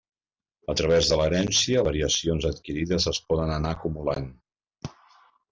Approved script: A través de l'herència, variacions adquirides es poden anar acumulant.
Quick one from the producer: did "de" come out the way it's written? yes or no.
yes